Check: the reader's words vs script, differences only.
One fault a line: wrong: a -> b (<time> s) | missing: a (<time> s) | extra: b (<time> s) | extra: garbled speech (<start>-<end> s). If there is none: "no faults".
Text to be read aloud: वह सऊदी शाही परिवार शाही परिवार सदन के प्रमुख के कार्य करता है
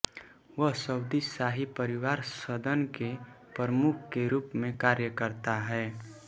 missing: शाही परिवार (2.2 s)
extra: रूप में (4.3 s)